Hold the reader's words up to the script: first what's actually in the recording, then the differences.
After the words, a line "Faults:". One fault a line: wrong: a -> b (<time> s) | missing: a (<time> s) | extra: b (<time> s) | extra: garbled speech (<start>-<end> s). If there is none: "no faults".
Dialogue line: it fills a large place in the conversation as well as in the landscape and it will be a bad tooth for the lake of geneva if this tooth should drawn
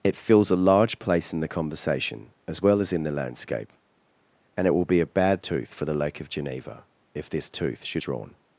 it fills a large place in the conversation as well as in the landscape and it will be a bad tooth for the lake of geneva if this tooth should drawn
Faults:
no faults